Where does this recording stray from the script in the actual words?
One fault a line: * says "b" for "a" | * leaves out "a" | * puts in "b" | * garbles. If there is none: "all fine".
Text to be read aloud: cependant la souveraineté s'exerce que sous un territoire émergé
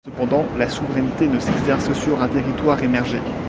* puts in "ne"
* says "sur" for "sous"